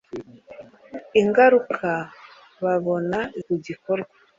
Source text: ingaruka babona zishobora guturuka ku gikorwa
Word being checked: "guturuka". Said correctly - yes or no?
no